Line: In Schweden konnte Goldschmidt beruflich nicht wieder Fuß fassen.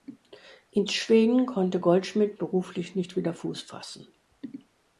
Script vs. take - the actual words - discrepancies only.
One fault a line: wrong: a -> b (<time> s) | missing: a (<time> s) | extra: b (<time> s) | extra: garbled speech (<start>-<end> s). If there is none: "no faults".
no faults